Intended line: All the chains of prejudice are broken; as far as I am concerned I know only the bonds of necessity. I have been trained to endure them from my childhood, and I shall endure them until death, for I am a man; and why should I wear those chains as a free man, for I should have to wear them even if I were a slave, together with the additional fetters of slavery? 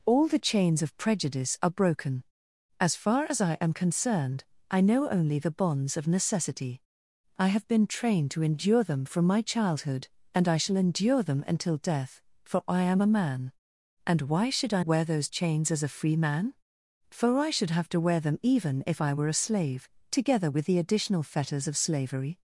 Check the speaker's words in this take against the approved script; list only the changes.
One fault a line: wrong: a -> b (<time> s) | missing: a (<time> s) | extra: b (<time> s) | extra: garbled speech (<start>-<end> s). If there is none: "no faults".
no faults